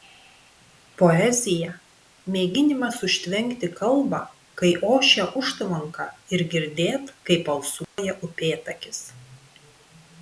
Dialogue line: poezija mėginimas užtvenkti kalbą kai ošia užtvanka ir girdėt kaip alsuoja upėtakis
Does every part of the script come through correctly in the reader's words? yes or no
yes